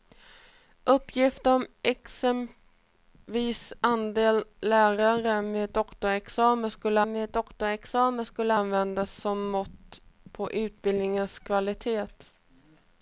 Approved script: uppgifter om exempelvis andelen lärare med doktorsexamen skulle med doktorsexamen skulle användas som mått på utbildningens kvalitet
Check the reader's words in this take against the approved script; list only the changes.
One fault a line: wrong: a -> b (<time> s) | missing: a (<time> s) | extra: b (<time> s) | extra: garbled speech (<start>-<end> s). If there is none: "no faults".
no faults